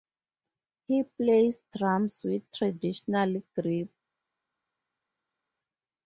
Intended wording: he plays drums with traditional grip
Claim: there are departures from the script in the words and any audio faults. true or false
false